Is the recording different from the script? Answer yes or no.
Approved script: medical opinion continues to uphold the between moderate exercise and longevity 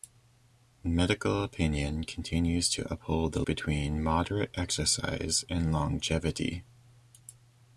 no